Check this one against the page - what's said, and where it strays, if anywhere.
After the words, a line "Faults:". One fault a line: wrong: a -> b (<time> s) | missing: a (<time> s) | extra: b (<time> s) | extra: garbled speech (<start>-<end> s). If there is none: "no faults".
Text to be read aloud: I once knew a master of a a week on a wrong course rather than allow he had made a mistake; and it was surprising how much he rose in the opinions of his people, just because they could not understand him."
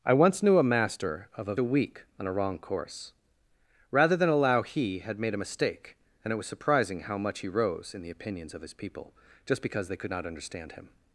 I once knew a master of a a week on a wrong course rather than allow he had made a mistake; and it was surprising how much he rose in the opinions of his people, just because they could not understand him."
Faults:
no faults